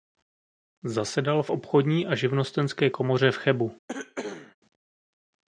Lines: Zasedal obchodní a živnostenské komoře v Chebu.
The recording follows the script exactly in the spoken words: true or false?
false